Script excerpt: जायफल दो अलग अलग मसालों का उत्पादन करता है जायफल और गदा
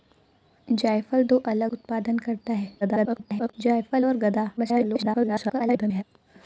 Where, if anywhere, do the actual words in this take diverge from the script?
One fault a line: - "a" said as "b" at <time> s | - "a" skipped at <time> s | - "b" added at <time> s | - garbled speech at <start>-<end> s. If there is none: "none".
- "अलग मसालों का" skipped at 1.7 s
- garbled speech at 2.8-3.5 s
- garbled speech at 4.6-6.0 s